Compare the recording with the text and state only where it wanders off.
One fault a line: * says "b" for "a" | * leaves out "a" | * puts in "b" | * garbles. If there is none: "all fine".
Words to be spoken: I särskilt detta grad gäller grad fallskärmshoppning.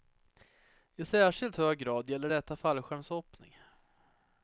* says "hög" for "detta"
* says "detta" for "grad"